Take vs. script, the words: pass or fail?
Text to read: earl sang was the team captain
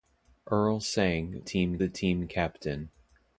fail